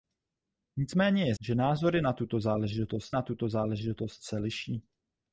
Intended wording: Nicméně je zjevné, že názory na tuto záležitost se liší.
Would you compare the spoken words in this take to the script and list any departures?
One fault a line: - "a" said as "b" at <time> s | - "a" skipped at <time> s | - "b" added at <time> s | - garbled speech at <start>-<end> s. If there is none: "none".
- "zjevné" skipped at 1.4 s
- "na tuto záležitost" added at 3.1 s